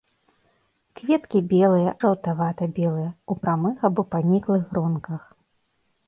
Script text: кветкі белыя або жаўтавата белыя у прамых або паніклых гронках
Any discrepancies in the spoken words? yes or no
yes